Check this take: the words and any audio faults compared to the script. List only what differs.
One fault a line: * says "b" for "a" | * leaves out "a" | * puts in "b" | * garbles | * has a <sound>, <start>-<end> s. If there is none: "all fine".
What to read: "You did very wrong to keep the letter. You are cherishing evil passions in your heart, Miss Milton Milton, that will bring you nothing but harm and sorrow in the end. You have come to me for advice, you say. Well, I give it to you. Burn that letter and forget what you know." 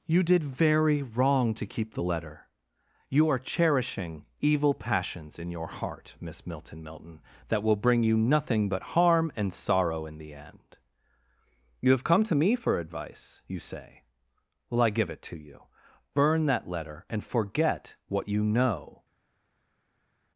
all fine